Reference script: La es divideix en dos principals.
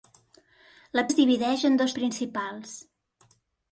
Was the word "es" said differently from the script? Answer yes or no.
no